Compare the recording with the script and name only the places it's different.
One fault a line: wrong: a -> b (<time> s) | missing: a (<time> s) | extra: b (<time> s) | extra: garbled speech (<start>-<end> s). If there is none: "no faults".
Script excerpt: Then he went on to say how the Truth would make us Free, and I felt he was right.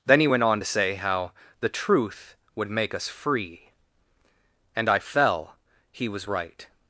wrong: felt -> fell (5.0 s)